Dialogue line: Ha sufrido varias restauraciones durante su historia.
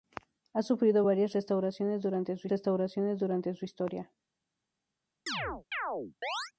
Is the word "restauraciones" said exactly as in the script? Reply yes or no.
yes